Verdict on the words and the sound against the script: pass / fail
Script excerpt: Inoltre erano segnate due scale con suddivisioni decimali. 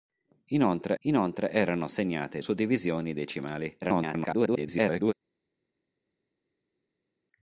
fail